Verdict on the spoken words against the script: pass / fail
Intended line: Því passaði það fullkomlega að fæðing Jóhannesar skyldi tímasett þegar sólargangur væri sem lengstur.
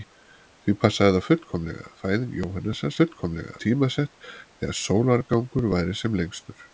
fail